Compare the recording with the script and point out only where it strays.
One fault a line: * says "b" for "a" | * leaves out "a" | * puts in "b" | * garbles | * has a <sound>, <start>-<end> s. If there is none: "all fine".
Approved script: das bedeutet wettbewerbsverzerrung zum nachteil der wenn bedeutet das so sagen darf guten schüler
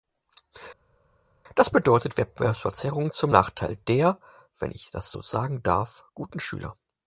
* says "ich" for "bedeutet"